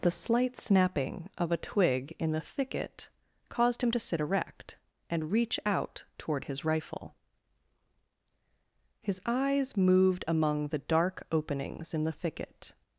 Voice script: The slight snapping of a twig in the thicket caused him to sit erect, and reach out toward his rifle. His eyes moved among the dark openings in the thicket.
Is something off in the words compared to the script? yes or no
no